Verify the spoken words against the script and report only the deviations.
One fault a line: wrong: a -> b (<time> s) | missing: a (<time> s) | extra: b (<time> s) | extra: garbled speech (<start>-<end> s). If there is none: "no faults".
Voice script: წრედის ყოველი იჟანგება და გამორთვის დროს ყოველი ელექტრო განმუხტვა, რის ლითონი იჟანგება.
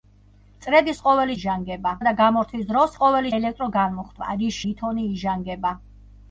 no faults